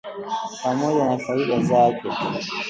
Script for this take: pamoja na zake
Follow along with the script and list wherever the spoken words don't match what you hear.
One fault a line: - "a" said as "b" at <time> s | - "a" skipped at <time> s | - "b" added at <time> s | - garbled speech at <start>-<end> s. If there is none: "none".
- "faida" added at 1.2 s